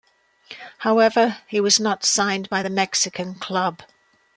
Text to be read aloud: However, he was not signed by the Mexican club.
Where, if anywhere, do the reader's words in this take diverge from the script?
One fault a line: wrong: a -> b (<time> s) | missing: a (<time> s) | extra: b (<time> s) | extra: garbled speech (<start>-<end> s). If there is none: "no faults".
no faults